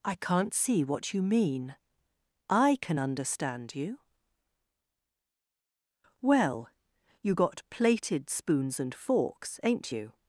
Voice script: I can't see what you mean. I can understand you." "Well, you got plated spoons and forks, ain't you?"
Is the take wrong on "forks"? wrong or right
right